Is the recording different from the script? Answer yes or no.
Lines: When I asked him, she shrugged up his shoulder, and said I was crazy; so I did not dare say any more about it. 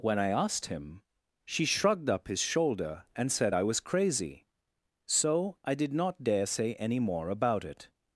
no